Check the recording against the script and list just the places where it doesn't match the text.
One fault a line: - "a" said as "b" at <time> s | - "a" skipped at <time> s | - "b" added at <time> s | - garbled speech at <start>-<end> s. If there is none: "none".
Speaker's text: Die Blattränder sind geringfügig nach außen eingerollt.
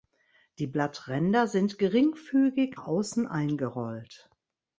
- "nach" skipped at 2.8 s